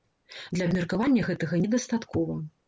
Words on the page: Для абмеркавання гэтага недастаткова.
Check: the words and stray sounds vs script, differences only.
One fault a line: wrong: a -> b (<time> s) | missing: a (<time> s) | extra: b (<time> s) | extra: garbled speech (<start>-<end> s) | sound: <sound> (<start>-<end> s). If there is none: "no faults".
no faults